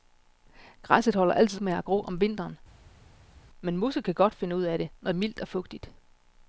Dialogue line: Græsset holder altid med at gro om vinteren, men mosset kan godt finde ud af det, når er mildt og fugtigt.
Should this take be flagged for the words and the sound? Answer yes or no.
no